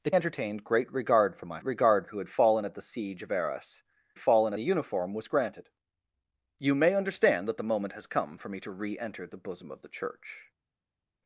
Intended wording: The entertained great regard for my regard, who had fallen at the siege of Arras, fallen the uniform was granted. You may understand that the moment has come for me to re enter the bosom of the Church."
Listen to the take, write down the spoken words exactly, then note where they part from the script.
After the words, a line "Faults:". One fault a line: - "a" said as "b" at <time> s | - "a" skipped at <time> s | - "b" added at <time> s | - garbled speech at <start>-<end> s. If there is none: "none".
The entertained great regard for my regard, who had fallen at the siege of Arras, fallen the uniform was granted. You may understand that the moment has come for me to re enter the bosom of the Church."
Faults:
none